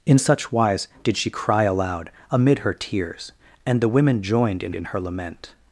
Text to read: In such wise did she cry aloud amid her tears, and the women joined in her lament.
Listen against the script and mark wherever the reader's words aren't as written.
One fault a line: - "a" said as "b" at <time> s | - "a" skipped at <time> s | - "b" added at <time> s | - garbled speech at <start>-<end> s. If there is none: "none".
- "in" added at 4.7 s